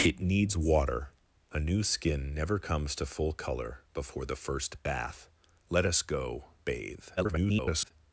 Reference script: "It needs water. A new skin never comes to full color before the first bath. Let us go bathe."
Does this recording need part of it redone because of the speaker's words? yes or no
yes